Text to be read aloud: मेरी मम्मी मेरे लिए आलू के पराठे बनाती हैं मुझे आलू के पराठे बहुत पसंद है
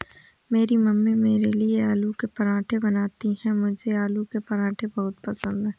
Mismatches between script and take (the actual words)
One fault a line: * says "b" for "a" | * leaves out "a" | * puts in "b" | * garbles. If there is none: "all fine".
all fine